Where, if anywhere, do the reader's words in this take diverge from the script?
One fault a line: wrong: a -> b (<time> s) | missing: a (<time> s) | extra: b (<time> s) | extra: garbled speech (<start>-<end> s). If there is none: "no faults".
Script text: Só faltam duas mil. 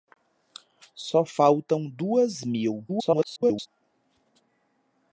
extra: garbled speech (2.9-3.7 s)